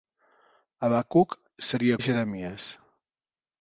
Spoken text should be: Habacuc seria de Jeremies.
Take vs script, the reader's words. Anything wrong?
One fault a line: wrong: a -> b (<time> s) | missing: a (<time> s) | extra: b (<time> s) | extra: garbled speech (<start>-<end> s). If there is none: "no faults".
no faults